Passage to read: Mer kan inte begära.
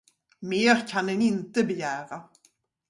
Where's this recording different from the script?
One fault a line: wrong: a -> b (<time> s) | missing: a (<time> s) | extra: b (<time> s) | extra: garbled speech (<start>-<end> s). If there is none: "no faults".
extra: en (1.1 s)